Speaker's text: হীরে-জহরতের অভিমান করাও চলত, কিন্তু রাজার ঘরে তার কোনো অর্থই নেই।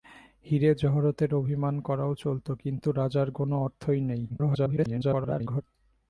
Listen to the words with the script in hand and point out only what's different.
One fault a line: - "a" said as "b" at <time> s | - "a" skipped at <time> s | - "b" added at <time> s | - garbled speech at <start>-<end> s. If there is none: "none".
- "ঘরে তার" skipped at 3.3 s
- garbled speech at 4.3-5.6 s